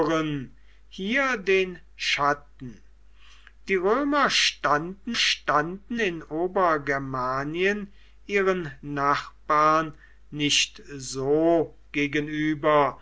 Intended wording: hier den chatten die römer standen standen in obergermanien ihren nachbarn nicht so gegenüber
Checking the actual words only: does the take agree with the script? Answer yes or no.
yes